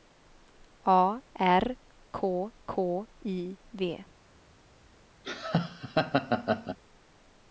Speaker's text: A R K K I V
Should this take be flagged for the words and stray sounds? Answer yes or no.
yes